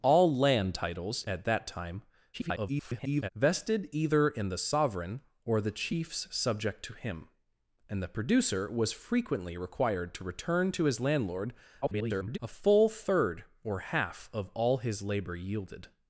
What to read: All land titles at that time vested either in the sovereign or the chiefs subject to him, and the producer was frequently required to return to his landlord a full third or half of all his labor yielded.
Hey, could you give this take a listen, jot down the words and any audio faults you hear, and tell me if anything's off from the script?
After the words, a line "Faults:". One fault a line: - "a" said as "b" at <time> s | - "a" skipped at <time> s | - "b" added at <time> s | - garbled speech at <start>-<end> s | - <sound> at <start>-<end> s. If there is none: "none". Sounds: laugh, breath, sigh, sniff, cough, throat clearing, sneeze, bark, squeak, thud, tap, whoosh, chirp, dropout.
All land titles at that time [garbled] vested either in the sovereign or the chiefs subject to him, and the producer was frequently required to return to his landlord [garbled] a full third or half of all his labor yielded.
Faults:
- garbled speech at 2.3-3.3 s
- garbled speech at 11.8-12.4 s